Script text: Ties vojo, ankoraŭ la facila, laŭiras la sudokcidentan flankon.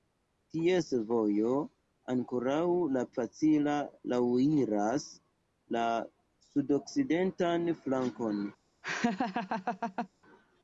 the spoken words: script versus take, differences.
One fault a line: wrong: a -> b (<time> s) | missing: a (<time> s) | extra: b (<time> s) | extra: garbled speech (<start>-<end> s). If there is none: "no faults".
no faults